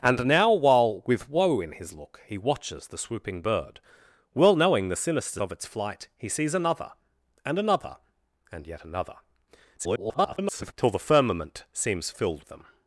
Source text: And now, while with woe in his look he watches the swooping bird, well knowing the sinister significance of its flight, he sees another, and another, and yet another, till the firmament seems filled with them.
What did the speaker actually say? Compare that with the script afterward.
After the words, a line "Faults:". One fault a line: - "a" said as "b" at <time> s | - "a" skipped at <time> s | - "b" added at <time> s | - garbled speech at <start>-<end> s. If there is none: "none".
And now, while with woe in his look he watches the swooping bird, well knowing the sinister of its flight, he sees another, and another, and yet another, [garbled] till the firmament seems filled them.
Faults:
- "significance" skipped at 5.4 s
- garbled speech at 9.8-10.7 s
- "with" skipped at 12.5 s